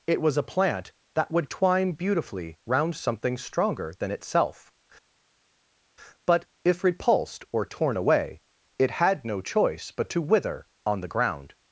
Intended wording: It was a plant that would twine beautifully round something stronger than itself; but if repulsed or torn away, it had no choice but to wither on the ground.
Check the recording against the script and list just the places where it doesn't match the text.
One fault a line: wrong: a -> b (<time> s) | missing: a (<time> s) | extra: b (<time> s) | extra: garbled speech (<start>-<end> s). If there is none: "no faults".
no faults